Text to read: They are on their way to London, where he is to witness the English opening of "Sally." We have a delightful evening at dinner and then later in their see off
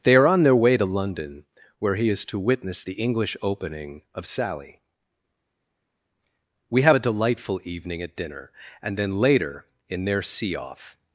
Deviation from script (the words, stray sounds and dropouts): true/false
false